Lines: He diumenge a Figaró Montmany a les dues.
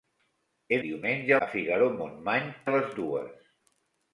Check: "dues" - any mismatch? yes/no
no